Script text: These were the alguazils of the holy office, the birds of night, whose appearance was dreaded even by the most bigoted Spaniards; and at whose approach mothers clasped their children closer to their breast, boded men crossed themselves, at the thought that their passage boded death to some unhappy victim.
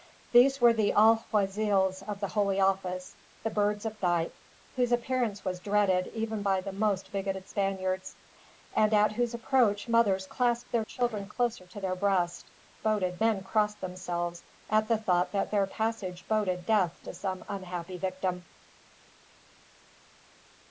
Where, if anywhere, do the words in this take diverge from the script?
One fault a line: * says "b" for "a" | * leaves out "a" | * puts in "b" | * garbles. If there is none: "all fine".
all fine